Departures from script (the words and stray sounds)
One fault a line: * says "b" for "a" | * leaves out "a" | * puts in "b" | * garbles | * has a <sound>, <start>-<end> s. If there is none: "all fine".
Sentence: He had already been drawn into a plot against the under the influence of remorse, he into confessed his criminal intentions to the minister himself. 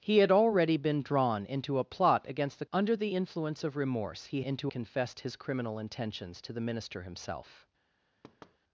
* has a thud, 8.2-8.6 s